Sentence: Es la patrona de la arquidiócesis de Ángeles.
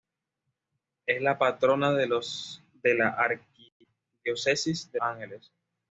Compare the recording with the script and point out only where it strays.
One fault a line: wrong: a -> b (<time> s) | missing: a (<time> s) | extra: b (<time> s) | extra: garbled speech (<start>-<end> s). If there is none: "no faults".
no faults